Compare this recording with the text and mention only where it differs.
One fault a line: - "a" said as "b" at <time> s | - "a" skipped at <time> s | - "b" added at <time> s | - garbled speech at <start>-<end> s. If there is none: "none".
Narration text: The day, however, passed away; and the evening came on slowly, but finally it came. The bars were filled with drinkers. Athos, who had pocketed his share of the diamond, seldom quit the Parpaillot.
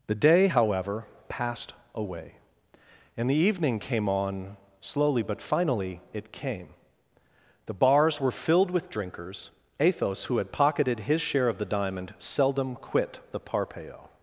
none